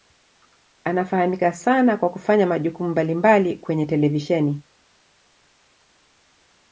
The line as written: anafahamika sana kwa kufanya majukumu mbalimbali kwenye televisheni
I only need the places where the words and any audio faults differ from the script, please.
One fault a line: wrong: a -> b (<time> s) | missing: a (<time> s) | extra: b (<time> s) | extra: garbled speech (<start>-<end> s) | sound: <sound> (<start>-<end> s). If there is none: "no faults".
no faults